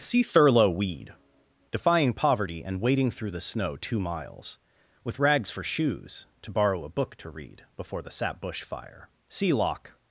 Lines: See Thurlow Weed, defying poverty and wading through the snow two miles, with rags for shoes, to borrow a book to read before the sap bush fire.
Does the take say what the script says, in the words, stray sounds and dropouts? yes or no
no